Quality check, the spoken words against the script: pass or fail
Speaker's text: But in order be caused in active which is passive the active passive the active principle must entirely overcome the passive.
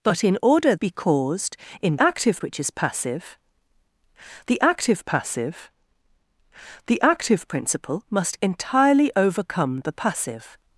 pass